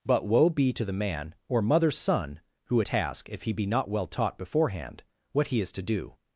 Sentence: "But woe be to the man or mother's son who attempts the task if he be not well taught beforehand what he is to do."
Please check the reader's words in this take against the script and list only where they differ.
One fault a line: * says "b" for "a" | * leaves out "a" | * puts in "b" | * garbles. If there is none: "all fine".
* leaves out "attempts the"